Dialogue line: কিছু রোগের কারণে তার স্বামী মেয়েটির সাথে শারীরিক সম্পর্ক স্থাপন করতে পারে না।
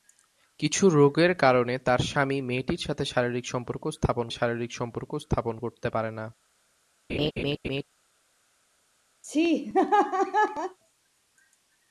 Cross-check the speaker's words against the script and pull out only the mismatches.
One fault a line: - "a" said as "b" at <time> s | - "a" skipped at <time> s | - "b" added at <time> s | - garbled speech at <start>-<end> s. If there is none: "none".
- "শারীরিক সম্পর্ক স্থাপন" added at 4.3 s